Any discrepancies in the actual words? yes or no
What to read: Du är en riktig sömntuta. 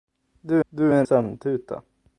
yes